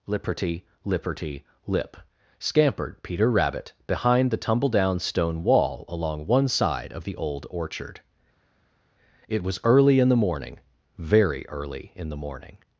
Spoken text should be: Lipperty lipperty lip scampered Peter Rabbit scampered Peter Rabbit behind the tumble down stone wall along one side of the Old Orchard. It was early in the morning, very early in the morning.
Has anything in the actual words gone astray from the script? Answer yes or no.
yes